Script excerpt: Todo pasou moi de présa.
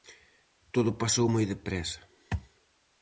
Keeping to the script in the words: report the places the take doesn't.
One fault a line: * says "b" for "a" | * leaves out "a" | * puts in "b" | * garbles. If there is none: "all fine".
all fine